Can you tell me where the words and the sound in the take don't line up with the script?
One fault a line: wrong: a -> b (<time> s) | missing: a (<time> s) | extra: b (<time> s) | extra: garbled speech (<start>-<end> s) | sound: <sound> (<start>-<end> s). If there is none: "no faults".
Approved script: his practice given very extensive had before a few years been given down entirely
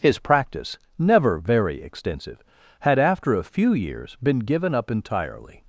wrong: given -> never (1.0 s)
wrong: before -> after (3.0 s)
wrong: down -> up (4.7 s)